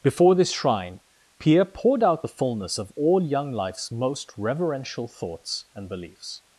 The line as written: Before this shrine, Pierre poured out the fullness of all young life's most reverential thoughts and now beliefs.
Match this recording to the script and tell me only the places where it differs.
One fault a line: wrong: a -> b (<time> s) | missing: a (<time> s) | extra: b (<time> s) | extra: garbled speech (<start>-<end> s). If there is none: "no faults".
missing: now (5.9 s)